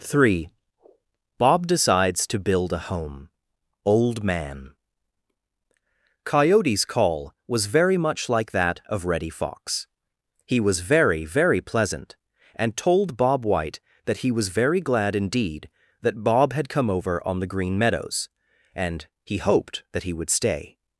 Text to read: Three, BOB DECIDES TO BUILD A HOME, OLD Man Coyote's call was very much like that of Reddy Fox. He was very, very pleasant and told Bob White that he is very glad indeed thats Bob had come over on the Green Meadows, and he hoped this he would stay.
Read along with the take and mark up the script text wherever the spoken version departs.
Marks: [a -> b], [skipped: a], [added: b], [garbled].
Three, BOB DECIDES TO BUILD A HOME, OLD Man Coyote's call was very much like that of Reddy Fox. He was very, very pleasant and told Bob White that he [is -> was] very glad indeed [thats -> that] Bob had come over on the Green Meadows, and he hoped [this -> that] he would stay.